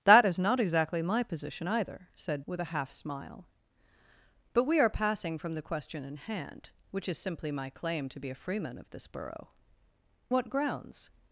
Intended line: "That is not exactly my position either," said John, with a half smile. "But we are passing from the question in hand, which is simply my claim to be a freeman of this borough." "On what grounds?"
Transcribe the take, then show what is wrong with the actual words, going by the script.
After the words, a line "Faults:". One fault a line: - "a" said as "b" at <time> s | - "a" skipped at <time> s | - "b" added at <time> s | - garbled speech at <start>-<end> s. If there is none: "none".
"That is not exactly my position either," said With a half smile. "But we are passing from the question in hand, which is simply my claim to be a freeman of this borough." "What grounds?"
Faults:
- "John" skipped at 2.4 s
- "On" skipped at 9.5 s